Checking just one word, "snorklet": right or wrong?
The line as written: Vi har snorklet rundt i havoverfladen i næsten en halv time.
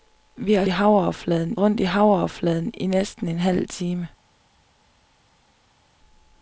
wrong